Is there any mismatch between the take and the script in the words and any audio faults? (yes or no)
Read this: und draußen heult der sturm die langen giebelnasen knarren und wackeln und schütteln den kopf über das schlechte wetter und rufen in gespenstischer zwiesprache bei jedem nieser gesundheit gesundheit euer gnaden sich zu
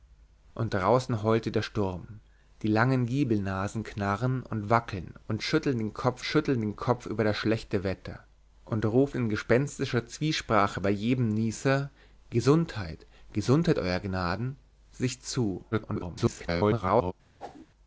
yes